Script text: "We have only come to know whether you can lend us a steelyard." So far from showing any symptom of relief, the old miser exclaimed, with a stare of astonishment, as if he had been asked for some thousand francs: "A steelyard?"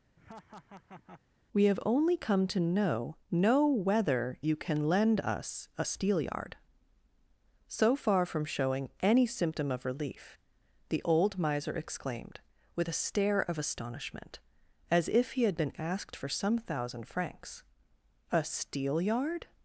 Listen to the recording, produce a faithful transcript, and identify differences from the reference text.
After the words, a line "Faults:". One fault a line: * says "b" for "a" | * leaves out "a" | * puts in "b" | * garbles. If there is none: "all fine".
"We have only come to know know whether you can lend us a steelyard." So far from showing any symptom of relief, the old miser exclaimed, with a stare of astonishment, as if he had been asked for some thousand francs: "A steelyard?"
Faults:
* puts in "know"